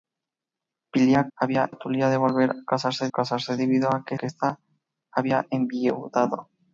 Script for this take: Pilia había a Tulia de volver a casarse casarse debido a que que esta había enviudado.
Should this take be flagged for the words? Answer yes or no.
no